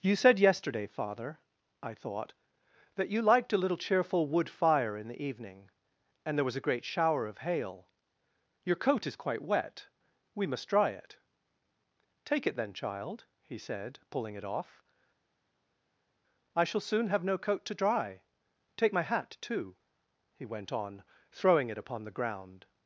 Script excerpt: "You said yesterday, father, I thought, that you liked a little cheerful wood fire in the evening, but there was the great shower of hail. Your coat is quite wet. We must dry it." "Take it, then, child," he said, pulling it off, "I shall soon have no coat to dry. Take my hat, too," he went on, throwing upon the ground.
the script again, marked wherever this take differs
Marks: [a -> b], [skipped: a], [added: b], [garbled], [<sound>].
"You said yesterday, father, I thought, that you liked a little cheerful wood fire in the evening, [but -> and] there was [the -> a] great shower of hail. Your coat is quite wet. We must dry it." "Take it, then, child," he said, pulling it off, "I shall soon have no coat to dry. Take my hat, too," he went on, throwing [added: it] upon the ground.